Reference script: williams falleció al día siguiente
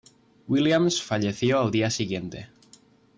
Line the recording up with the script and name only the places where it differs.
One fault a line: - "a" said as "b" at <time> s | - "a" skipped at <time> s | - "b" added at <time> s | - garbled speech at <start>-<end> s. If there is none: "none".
none